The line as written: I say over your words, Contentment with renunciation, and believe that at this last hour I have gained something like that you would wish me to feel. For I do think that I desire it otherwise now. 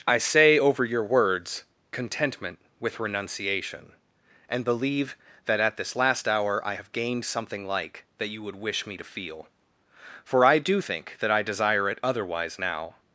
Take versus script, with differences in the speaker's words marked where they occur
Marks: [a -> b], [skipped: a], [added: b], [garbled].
I say over your words, Contentment with renunciation, and believe that at this last hour I have gained something like that you would wish me to feel. For I do think that I desire it otherwise now.